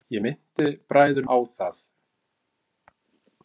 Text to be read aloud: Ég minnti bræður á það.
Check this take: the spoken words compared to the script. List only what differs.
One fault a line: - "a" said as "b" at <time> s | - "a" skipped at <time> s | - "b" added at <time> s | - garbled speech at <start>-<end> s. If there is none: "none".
none